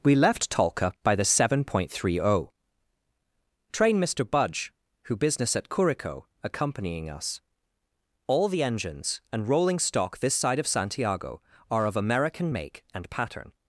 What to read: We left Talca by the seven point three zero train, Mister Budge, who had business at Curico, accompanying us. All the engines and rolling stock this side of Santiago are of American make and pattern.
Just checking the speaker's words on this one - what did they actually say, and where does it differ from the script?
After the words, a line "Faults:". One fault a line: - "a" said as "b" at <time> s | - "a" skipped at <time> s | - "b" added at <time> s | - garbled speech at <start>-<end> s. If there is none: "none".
We left Talca by the seven point three zero train, Mister Budge, who business at Curico, accompanying us. All the engines and rolling stock this side of Santiago are of American make and pattern.
Faults:
- "had" skipped at 5.2 s